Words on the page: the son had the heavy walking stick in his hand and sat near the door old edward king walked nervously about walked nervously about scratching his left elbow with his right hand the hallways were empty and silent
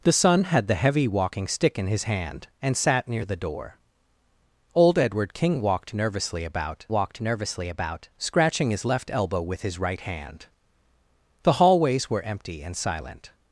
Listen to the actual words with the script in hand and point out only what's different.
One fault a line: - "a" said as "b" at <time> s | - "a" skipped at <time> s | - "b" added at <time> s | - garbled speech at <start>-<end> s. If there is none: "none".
none